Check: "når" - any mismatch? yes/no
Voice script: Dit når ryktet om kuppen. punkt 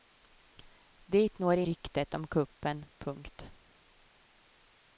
no